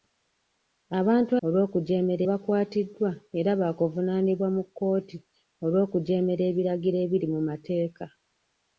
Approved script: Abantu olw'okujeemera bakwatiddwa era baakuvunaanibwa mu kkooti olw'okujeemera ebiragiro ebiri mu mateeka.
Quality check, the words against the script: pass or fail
pass